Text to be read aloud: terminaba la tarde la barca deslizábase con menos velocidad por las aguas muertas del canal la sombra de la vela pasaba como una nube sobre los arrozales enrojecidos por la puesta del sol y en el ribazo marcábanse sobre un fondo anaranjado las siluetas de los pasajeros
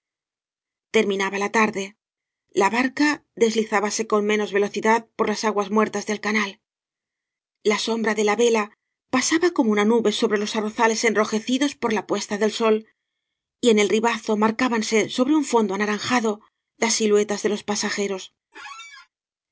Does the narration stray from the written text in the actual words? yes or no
no